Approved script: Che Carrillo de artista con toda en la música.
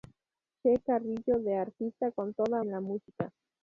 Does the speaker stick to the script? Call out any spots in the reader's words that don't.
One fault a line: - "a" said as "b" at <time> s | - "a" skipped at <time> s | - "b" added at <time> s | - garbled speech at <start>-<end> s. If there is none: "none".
none